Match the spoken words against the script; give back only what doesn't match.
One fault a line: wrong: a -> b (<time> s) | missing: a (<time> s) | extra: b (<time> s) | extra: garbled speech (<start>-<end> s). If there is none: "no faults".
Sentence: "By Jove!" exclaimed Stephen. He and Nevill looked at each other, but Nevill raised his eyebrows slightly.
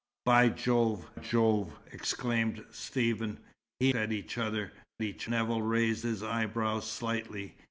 extra: Jove (1.1 s)
missing: and Nevill looked (3.9 s)
wrong: but -> each (5.0 s)